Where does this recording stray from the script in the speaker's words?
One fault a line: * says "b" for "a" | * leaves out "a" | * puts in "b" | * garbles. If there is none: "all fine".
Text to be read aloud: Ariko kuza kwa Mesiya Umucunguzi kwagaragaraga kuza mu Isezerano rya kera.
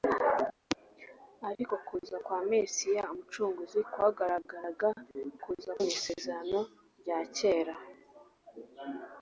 all fine